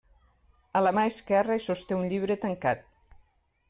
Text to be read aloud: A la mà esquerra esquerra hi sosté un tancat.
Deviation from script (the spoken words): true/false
true